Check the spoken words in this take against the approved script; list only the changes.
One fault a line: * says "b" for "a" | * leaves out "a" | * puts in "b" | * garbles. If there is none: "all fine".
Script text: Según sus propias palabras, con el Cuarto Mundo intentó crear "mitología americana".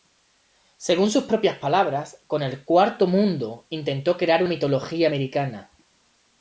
all fine